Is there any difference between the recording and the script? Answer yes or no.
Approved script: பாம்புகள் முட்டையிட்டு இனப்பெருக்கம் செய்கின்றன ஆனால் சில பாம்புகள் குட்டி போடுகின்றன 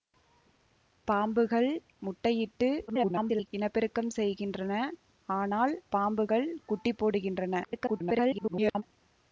yes